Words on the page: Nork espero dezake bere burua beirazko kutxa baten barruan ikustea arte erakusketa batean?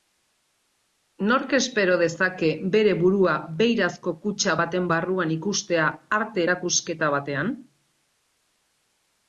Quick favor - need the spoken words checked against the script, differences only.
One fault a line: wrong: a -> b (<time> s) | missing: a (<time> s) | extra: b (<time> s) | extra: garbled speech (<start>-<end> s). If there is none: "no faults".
no faults